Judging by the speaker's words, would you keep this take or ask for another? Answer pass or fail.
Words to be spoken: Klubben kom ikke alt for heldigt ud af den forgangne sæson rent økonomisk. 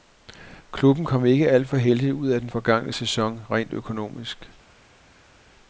pass